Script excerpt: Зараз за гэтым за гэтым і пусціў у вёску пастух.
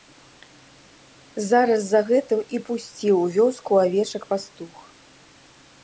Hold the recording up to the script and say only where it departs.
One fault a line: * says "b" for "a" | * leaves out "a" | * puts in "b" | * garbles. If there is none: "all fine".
* leaves out "за гэтым"
* puts in "авечак"